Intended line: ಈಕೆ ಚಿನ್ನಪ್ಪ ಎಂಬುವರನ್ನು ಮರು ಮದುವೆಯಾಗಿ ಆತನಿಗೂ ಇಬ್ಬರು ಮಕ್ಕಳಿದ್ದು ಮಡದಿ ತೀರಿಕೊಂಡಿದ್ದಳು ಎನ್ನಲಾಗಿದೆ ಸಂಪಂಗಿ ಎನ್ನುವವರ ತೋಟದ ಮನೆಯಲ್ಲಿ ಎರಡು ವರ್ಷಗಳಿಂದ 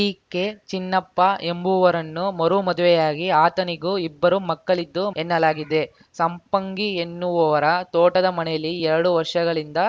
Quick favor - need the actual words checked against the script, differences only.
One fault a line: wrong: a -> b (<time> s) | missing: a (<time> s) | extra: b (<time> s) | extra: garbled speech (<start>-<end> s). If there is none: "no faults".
missing: ಮಡದಿ ತೀರಿಕೊಂಡಿದ್ದಳು (5.0 s)